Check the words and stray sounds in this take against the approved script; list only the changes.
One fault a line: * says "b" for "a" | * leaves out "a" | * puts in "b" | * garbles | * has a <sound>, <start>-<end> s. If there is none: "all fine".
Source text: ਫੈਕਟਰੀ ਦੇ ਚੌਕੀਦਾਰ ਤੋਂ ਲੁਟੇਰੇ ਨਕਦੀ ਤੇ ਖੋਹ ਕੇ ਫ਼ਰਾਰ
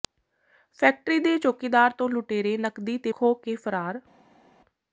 all fine